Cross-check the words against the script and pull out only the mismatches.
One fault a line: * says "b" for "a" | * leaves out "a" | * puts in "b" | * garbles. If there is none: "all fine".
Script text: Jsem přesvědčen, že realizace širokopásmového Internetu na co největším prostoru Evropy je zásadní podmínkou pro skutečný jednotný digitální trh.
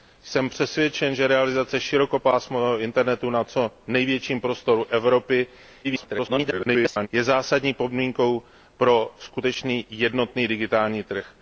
* garbles